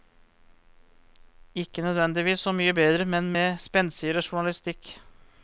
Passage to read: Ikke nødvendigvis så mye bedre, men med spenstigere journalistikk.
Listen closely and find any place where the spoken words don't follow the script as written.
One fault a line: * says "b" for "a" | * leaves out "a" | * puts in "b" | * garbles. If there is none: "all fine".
all fine